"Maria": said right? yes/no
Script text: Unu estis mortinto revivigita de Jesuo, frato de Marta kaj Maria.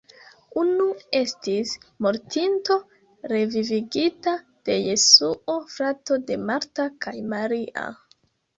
yes